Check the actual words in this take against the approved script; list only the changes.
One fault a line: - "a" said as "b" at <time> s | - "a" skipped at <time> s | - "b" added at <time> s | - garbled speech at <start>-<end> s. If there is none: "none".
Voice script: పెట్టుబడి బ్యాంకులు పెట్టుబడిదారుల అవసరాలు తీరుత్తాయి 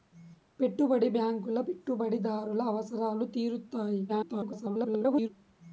- garbled speech at 4.1-5.3 s